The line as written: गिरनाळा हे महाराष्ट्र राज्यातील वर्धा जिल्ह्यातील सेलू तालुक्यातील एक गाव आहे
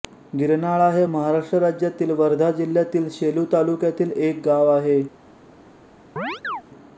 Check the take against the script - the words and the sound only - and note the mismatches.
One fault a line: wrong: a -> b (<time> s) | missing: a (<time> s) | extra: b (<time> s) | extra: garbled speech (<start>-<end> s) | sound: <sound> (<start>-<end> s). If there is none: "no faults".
sound: chirp (6.2-6.6 s)